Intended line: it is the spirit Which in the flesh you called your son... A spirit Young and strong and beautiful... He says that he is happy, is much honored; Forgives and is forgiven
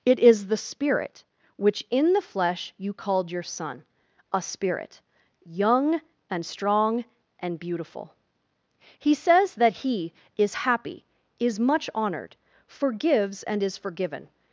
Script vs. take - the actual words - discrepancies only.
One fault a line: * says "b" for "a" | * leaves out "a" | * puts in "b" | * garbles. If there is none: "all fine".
all fine